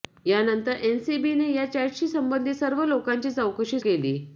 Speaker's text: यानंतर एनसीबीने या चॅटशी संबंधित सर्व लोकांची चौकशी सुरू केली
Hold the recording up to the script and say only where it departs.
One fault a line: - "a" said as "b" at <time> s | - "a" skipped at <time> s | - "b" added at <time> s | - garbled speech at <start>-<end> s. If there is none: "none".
- "सुरू" skipped at 3.8 s